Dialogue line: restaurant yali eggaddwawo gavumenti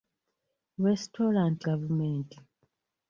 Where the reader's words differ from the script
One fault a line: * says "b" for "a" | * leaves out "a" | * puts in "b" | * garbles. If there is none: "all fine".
* leaves out "yali eggaddwawo"